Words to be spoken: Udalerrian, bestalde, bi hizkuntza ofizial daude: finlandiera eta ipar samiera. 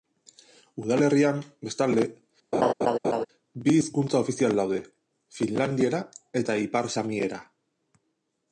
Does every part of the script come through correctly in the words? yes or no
yes